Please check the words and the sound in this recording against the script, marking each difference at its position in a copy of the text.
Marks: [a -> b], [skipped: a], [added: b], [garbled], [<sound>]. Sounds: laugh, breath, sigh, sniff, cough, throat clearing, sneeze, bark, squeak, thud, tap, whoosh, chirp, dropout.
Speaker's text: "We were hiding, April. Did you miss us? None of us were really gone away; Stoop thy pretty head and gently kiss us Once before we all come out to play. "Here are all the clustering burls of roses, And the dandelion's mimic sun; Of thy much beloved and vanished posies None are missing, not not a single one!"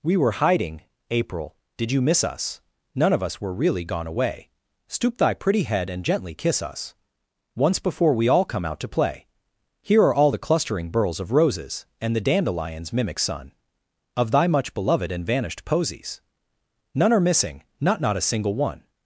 "We were hiding, April. Did you miss us? None of us were really gone away; Stoop thy pretty head and gently kiss us Once before we all come out to play. "Here are all the clustering burls of roses, And the dandelion's mimic sun; Of thy much beloved and vanished posies None are missing, not not a single one!"